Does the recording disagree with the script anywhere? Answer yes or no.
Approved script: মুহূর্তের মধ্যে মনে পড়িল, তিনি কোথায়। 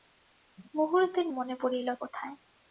yes